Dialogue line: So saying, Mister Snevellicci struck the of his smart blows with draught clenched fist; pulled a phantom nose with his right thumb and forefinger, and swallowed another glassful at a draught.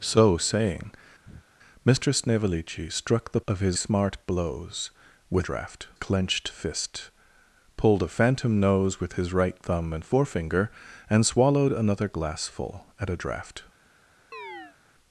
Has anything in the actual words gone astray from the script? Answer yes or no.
no